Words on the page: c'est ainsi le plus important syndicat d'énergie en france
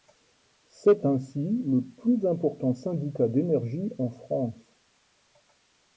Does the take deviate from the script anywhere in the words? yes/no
no